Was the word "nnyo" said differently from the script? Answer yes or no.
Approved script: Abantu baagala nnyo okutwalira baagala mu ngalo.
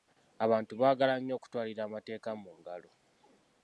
no